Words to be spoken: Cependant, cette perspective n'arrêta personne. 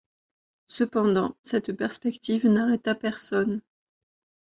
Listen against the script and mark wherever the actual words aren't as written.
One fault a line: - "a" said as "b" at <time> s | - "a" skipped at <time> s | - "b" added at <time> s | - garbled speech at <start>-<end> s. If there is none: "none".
none